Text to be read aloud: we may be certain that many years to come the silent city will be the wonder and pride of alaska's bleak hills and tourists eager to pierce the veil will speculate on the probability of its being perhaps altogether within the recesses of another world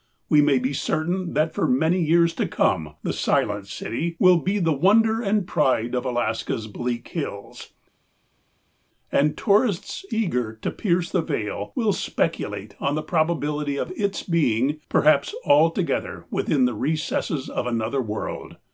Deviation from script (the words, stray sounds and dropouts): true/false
true